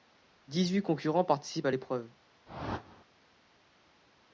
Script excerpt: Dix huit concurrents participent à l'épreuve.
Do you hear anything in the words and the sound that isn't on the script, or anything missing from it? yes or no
yes